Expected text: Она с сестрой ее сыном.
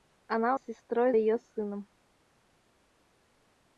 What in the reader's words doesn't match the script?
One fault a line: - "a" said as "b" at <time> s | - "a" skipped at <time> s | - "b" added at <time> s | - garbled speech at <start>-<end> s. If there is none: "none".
none